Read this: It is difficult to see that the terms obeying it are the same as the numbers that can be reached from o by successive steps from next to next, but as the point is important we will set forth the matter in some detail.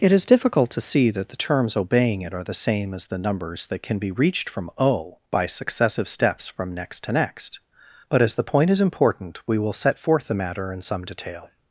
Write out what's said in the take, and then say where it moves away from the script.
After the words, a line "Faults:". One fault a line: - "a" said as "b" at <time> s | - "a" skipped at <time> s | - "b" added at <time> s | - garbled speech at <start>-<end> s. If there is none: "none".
It is difficult to see that the terms obeying it are the same as the numbers that can be reached from o by successive steps from next to next, but as the point is important we will set forth the matter in some detail.
Faults:
none